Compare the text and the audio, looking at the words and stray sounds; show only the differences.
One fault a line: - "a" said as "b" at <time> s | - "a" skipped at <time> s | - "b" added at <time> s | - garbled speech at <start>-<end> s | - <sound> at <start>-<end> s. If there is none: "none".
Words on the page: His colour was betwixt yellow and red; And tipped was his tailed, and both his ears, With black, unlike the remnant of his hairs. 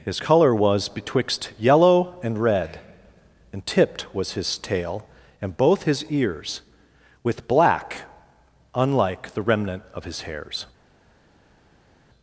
- "tailed" said as "tail" at 4.6 s